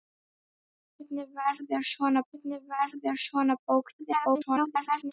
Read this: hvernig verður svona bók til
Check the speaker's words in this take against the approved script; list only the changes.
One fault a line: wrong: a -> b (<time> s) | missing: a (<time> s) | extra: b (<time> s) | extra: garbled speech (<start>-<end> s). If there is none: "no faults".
extra: hvernig verður svona (2.3 s)
extra: garbled speech (4.0-5.1 s)